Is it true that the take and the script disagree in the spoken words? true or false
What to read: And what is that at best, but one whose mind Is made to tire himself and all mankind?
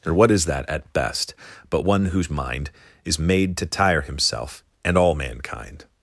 true